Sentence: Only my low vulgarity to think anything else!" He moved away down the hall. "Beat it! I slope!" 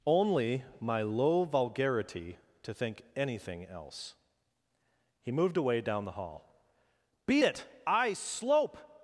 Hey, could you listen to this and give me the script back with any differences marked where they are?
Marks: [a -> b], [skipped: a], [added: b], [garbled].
Only my low vulgarity to think anything else!" He moved away down the hall. "Beat it! I slope!"